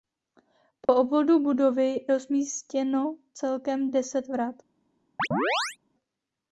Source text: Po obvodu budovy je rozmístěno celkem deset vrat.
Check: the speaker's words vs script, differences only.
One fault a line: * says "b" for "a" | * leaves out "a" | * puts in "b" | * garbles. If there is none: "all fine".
* leaves out "je"